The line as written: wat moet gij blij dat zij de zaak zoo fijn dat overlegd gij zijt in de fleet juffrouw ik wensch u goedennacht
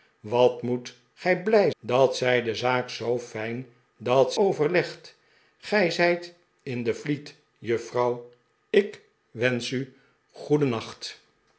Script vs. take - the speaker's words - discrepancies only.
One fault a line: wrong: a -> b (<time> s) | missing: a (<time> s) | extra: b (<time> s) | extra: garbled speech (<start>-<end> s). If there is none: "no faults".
no faults